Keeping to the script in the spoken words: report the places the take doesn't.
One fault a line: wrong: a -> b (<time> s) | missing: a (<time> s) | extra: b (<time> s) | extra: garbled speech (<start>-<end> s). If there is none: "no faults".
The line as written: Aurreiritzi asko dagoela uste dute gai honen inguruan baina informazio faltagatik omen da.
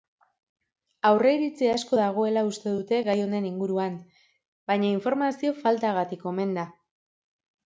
no faults